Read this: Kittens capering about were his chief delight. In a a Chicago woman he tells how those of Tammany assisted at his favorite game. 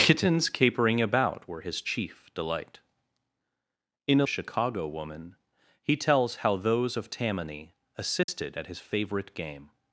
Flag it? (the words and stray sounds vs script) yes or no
yes